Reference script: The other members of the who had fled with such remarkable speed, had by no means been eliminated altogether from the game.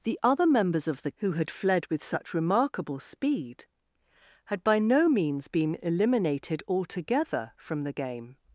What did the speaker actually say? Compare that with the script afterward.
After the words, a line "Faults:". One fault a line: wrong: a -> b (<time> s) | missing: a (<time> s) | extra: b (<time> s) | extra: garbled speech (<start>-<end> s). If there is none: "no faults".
The other members of the who had fled with such remarkable speed, had by no means been eliminated altogether from the game.
Faults:
no faults